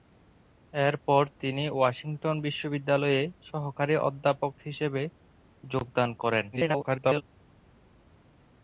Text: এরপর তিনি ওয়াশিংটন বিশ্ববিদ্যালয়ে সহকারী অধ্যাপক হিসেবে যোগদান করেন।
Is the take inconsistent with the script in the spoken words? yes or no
yes